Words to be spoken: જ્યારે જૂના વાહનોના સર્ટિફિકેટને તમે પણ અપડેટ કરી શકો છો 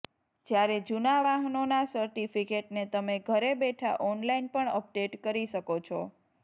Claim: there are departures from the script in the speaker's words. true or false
true